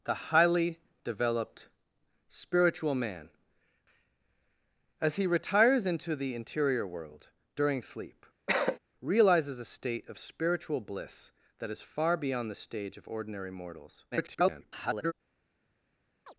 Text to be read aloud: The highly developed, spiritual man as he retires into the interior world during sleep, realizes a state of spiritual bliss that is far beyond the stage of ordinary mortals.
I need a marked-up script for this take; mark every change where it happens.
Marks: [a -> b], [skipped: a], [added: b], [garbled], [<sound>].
The highly developed, spiritual man as he retires into the interior world during sleep, [cough] realizes a state of spiritual bliss that is far beyond the stage of ordinary mortals. [garbled] [chirp]